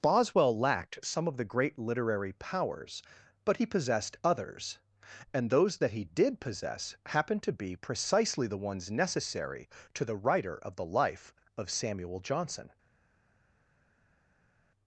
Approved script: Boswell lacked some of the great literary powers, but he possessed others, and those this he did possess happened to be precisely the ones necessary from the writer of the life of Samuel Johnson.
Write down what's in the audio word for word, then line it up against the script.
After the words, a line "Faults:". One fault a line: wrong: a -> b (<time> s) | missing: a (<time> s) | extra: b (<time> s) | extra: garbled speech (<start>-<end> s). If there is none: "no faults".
Boswell lacked some of the great literary powers, but he possessed others, and those that he did possess happened to be precisely the ones necessary to the writer of the life of Samuel Johnson.
Faults:
wrong: this -> that (5.8 s)
wrong: from -> to (9.9 s)